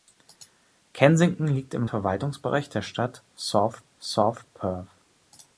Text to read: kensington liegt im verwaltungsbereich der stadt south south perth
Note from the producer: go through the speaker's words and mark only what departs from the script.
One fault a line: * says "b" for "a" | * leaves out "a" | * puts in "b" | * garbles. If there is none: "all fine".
all fine